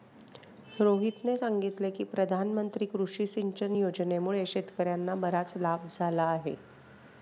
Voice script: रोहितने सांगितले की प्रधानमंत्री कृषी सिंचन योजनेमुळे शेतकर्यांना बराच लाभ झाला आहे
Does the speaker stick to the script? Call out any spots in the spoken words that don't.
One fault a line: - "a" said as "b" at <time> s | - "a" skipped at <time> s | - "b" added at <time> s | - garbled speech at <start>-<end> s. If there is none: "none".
none